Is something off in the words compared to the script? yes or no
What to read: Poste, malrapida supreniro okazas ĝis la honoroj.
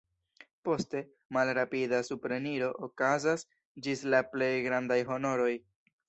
yes